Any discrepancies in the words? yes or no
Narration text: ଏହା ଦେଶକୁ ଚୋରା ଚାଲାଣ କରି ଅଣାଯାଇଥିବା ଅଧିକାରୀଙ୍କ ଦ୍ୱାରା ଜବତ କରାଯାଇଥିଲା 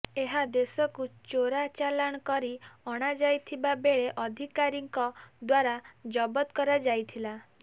yes